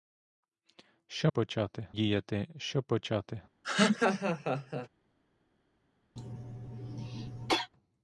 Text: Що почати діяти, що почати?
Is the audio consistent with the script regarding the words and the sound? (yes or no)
no